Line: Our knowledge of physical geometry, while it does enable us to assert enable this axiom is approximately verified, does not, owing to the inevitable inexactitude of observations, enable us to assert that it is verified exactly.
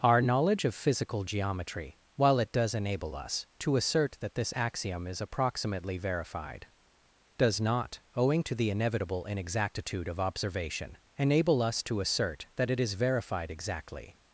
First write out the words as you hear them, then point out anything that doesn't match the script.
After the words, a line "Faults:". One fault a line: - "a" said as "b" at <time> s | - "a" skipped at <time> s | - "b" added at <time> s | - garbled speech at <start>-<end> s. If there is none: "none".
Our knowledge of physical geometry, while it does enable us to assert that this axiom is approximately verified, does not, owing to the inevitable inexactitude of observation, enable us to assert that it is verified exactly.
Faults:
- "enable" said as "that" at 4.2 s
- "observations" said as "observation" at 10.2 s